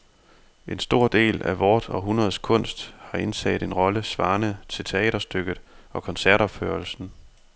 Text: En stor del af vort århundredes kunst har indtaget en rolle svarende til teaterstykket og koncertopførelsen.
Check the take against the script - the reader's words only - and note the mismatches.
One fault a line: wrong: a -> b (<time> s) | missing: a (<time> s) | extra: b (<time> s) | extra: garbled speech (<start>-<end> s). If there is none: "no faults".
no faults